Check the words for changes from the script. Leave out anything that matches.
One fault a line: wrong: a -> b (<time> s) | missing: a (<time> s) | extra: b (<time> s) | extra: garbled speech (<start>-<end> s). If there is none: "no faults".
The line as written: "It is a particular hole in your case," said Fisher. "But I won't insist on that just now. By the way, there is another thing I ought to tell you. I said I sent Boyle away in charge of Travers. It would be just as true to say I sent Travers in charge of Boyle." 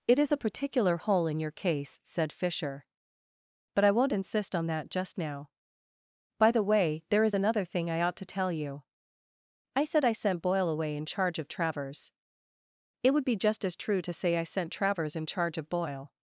no faults